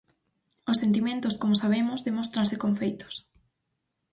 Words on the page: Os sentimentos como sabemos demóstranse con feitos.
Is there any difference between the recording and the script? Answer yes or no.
no